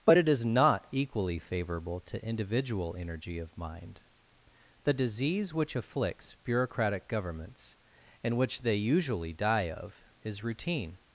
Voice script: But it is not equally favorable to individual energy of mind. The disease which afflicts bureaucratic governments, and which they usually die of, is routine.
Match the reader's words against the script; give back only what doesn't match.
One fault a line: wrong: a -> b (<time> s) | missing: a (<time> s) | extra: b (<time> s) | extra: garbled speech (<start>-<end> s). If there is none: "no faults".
no faults